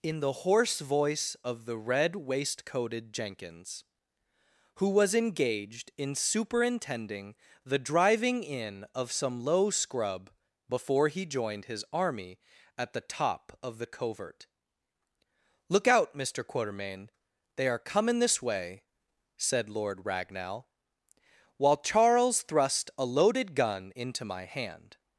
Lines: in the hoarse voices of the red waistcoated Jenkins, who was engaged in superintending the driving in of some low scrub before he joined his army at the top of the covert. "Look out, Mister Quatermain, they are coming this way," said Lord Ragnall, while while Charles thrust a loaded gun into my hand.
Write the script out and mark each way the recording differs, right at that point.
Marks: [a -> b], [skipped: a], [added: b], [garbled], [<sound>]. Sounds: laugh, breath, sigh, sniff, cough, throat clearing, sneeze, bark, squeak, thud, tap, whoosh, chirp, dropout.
in the hoarse [voices -> voice] of the red waistcoated Jenkins, who was engaged in superintending the driving in of some low scrub before he joined his army at the top of the covert. "Look out, Mister Quatermain, they are coming this way," said Lord Ragnall, while [skipped: while] Charles thrust a loaded gun into my hand.